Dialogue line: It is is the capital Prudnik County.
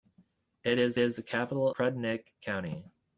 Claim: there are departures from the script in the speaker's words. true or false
false